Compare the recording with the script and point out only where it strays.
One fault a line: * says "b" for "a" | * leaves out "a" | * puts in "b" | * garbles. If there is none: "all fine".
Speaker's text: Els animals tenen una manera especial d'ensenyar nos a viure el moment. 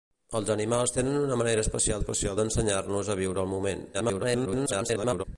* puts in "especial"
* garbles